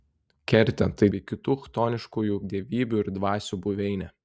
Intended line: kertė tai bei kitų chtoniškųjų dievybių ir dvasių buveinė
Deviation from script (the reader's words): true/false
false